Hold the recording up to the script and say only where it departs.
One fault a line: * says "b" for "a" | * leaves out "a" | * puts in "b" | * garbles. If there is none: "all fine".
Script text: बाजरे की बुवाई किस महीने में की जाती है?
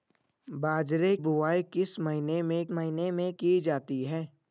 * leaves out "की"
* puts in "महीने में"